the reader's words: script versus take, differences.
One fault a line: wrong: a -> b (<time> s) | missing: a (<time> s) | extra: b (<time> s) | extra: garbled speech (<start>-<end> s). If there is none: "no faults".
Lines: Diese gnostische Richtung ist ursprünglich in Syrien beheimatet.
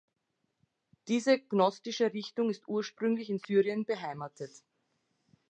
no faults